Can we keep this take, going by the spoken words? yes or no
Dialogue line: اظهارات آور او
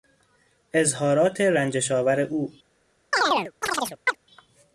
no